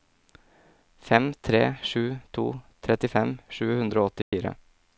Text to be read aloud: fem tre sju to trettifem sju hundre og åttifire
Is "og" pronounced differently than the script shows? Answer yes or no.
no